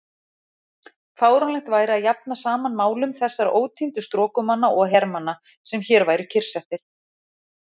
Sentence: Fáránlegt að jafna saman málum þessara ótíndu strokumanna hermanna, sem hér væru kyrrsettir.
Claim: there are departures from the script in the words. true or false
true